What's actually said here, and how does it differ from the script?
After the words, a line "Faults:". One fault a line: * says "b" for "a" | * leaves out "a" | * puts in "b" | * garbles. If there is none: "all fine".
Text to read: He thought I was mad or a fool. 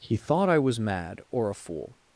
He thought I was mad or a fool.
Faults:
all fine